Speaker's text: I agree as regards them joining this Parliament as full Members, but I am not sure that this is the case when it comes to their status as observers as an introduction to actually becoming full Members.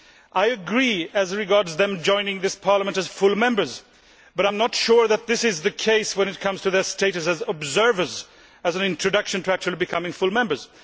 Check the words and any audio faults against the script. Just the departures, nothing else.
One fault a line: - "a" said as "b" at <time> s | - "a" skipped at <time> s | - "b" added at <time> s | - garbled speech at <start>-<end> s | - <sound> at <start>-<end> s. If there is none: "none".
none